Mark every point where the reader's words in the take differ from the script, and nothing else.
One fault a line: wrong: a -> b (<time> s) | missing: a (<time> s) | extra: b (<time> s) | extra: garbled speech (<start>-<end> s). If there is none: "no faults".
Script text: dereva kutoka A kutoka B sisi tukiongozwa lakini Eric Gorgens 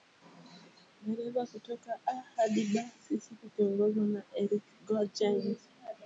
wrong: kutoka -> hadi (2.4 s)
wrong: lakini -> na (4.1 s)